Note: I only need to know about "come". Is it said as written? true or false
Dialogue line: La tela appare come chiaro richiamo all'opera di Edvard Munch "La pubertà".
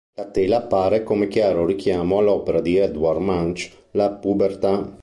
true